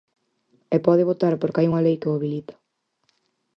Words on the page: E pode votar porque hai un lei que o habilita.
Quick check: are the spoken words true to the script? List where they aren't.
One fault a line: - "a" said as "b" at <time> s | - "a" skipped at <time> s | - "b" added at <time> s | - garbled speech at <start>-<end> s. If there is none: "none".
- "un" said as "unha" at 1.7 s